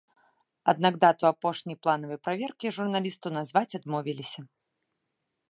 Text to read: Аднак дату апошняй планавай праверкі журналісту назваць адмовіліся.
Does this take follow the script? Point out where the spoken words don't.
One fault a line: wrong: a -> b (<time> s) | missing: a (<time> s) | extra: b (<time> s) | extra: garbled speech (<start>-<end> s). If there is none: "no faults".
no faults